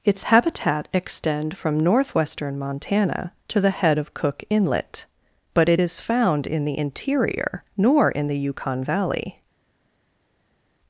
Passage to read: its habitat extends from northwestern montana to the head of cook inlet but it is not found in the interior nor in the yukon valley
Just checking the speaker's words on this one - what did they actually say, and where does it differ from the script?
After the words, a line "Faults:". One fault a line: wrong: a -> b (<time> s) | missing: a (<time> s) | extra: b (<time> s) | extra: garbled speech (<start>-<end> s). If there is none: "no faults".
its habitat extend from northwestern montana to the head of cook inlet but it is found in the interior nor in the yukon valley
Faults:
wrong: extends -> extend (0.9 s)
missing: not (6.0 s)